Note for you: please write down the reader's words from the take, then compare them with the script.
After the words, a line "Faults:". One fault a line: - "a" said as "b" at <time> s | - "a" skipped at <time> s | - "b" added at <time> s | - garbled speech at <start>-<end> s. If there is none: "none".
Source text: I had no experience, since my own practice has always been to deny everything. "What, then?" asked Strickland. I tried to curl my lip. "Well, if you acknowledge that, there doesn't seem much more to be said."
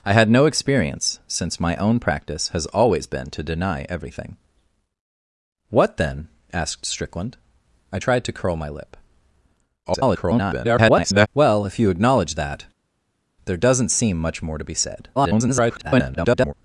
I had no experience, since my own practice has always been to deny everything. "What, then?" asked Strickland. I tried to curl my lip. [garbled] "Well, if you acknowledge that, there doesn't seem much more to be said." [garbled]
Faults:
- garbled speech at 9.8-11.3 s
- garbled speech at 15.2-16.5 s